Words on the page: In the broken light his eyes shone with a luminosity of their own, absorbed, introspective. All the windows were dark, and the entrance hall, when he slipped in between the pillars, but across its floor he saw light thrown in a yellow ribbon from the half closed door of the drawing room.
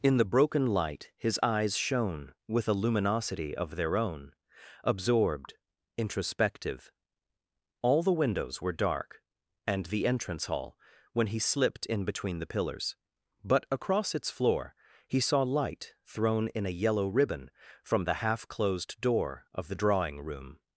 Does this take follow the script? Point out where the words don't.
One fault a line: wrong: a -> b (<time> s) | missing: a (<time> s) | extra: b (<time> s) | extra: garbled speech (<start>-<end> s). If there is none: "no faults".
no faults